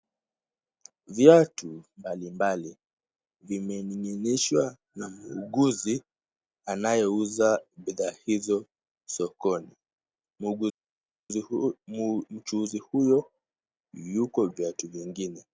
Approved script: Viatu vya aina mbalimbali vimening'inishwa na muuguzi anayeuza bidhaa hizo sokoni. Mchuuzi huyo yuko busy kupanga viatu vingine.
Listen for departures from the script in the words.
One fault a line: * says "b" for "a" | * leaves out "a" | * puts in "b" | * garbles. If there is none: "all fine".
* leaves out "vya aina"
* leaves out "busy kupanga"